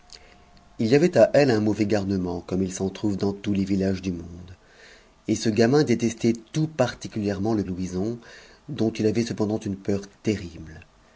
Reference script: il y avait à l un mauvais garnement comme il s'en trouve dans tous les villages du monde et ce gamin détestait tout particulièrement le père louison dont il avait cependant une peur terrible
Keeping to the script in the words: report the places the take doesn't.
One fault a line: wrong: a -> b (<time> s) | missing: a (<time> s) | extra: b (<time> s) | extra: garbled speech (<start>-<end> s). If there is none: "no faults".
missing: père (7.6 s)